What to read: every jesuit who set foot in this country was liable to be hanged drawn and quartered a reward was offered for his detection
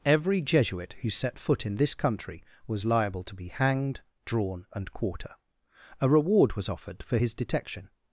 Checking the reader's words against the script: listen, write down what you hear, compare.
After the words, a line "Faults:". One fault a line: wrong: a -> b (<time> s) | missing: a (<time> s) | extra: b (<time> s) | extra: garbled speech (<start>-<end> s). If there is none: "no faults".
every jesuit who set foot in this country was liable to be hanged drawn and quarter a reward was offered for his detection
Faults:
wrong: quartered -> quarter (4.9 s)